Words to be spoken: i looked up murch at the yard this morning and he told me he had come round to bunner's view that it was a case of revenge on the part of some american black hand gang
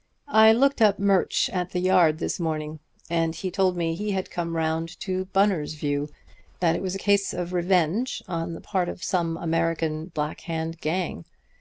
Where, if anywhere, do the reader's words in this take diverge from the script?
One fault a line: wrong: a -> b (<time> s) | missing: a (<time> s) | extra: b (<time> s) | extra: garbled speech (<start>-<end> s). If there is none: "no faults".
no faults